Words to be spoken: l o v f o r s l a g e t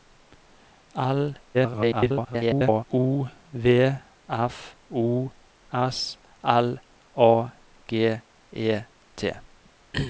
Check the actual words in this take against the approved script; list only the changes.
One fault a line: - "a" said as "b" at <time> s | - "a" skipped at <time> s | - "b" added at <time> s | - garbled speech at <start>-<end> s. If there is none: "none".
- garbled speech at 1.5-2.8 s
- "r" skipped at 5.3 s